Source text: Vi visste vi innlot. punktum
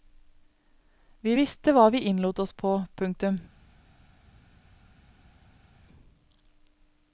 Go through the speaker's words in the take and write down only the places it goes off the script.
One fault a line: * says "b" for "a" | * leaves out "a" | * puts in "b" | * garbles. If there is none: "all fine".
* puts in "hva"
* puts in "oss på"